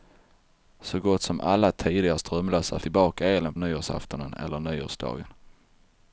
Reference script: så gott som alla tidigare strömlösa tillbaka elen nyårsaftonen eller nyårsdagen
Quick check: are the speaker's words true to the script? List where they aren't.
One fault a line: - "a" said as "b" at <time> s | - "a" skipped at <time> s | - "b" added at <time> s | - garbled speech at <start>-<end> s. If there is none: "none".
none